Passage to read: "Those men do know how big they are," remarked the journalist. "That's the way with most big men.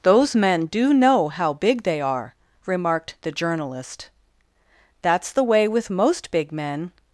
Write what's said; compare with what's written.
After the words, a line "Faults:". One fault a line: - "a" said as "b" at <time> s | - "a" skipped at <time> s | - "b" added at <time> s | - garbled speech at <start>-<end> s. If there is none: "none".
"Those men do know how big they are," remarked the journalist. "That's the way with most big men.
Faults:
none